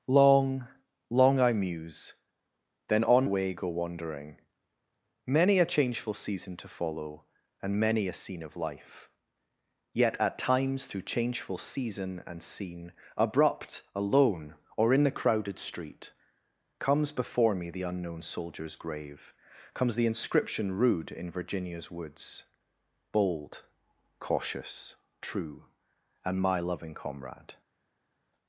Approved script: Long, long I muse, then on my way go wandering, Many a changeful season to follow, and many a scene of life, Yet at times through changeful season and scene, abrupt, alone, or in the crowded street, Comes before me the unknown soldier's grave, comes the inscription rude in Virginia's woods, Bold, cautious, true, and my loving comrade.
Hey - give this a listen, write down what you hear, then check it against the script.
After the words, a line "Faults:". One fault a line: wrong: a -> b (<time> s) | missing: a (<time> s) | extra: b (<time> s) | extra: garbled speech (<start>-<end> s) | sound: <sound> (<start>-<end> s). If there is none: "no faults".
Long, long I muse, then on way go wandering, Many a changeful season to follow, and many a scene of life, Yet at times through changeful season and scene, abrupt, alone, or in the crowded street, Comes before me the unknown soldier's grave, comes the inscription rude in Virginia's woods, Bold, cautious, true, and my loving comrade.
Faults:
missing: my (3.3 s)